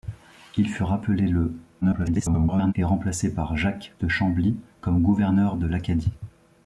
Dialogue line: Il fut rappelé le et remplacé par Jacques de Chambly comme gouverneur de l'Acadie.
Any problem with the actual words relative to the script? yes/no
yes